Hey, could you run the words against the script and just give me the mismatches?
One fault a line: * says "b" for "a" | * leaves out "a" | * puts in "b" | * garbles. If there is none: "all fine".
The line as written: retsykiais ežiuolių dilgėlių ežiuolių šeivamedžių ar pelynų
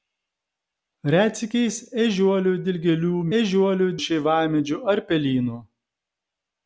all fine